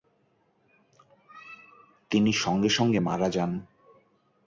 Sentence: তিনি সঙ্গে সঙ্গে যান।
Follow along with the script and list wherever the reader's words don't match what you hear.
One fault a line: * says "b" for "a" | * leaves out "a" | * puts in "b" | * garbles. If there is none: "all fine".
* puts in "মারা"